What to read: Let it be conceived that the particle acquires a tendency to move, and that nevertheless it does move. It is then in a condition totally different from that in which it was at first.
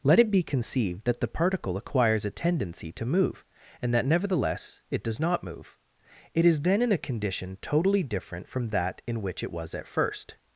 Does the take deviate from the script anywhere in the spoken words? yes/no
yes